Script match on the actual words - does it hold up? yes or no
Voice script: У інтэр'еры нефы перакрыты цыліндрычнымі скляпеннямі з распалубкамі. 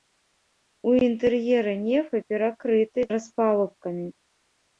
no